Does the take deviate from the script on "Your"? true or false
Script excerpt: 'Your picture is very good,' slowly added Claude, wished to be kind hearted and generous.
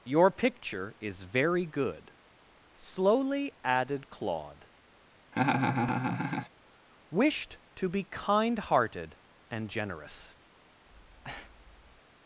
false